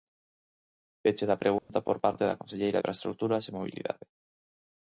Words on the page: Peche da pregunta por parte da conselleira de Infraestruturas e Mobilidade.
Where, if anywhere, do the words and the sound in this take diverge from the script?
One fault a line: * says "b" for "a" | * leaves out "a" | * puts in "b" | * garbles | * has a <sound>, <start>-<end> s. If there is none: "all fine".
* has a dropout, 1.6-1.7 s
* leaves out "de"